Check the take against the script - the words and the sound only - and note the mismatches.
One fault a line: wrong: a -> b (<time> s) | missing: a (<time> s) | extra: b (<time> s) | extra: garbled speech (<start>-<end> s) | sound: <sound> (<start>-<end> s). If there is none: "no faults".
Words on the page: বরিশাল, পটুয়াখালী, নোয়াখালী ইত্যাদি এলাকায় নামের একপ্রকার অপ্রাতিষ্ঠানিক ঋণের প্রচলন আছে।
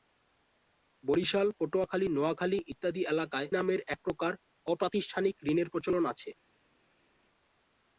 no faults